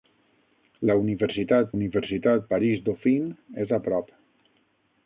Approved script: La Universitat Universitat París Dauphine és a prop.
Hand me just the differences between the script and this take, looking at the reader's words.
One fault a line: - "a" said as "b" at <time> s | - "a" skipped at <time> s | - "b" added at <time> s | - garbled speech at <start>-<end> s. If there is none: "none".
none